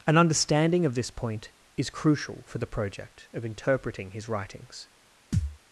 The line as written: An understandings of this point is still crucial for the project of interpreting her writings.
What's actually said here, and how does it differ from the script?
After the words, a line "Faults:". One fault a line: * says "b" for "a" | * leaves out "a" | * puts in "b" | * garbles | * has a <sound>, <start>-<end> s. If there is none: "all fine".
An understanding of this point is crucial for the project of interpreting his writings.
Faults:
* says "understanding" for "understandings"
* leaves out "still"
* says "his" for "her"
* has a thud, 5.3-5.6 s